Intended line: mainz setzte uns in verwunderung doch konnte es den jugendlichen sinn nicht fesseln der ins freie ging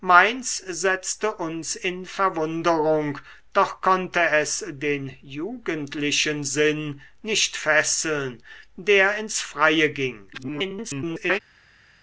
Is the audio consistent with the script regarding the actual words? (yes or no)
no